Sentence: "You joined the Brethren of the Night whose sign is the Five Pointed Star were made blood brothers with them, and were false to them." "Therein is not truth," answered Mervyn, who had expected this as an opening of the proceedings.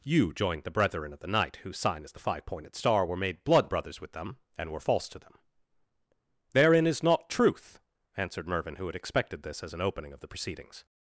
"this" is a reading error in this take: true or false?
false